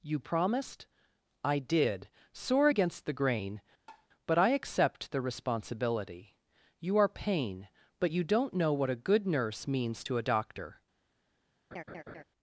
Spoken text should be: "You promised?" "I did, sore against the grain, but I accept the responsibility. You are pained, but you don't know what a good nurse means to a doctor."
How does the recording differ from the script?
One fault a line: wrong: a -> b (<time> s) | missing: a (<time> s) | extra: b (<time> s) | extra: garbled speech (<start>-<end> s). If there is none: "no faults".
wrong: pained -> pain (7.1 s)